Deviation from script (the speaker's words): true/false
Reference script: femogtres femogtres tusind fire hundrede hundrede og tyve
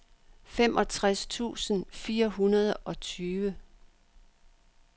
true